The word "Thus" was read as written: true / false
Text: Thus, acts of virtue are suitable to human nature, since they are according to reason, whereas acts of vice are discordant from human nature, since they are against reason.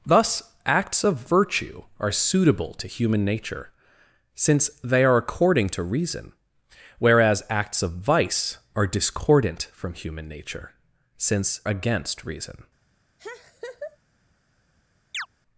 true